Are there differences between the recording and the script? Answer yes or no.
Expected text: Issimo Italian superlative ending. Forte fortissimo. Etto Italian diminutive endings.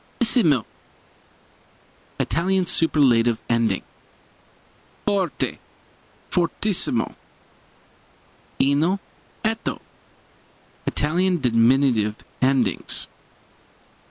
yes